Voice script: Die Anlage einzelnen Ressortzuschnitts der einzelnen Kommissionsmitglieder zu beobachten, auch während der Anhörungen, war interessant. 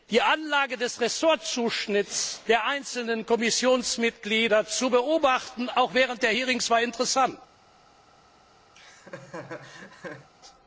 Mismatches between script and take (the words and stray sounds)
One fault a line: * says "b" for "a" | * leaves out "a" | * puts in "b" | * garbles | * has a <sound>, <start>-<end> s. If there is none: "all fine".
* says "des" for "einzelnen"
* has a laugh, 8.7-10.3 s